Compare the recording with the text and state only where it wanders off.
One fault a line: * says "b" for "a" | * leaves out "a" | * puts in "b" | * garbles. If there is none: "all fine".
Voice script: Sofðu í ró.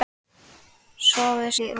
all fine